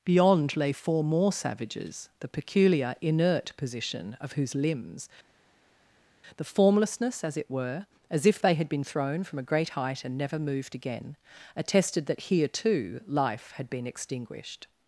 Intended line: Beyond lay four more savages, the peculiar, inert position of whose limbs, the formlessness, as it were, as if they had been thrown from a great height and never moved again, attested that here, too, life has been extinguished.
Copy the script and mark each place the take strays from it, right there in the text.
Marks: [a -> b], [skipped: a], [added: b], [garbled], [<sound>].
Beyond lay four more savages, the peculiar, inert position of whose limbs, the formlessness, as it were, as if they had been thrown from a great height and never moved again, attested that here, too, life [has -> had] been extinguished.